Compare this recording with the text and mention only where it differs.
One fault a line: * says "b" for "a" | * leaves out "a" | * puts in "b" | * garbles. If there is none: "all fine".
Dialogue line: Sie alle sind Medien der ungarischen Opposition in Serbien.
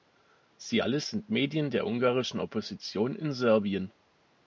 all fine